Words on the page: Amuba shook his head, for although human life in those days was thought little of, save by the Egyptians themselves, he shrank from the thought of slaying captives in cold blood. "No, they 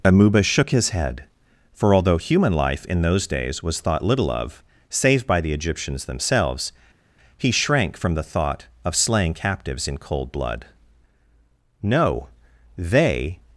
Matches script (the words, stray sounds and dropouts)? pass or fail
pass